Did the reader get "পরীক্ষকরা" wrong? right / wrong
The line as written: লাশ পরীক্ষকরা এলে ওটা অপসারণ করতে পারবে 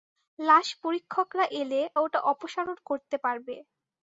right